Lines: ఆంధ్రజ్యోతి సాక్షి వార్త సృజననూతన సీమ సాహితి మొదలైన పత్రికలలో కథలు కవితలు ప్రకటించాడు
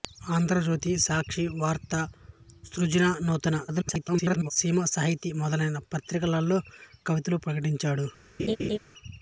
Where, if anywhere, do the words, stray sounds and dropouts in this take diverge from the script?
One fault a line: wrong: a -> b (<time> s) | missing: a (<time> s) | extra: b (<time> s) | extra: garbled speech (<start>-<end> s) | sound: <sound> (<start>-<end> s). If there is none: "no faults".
extra: garbled speech (3.7-4.5 s)
missing: కథలు (6.6 s)
sound: laugh (8.4-8.8 s)